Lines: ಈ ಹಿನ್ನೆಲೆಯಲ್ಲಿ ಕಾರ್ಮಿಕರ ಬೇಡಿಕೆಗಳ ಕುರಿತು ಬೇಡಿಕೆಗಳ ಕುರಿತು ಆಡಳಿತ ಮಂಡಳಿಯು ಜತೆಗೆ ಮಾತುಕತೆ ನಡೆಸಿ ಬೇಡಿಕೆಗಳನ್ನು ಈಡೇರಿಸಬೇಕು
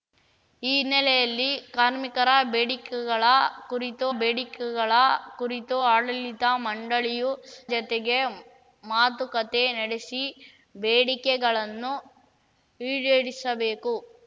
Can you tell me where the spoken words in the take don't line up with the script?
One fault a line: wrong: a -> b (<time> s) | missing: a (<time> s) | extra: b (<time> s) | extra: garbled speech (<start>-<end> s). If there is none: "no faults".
no faults